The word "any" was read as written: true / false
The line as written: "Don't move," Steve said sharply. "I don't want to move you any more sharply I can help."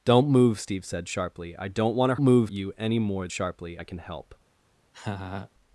true